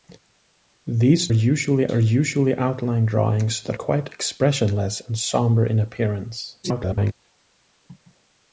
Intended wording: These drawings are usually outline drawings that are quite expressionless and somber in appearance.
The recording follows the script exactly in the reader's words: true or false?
false